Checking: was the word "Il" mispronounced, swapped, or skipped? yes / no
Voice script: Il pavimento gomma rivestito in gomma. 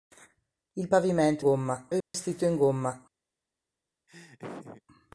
no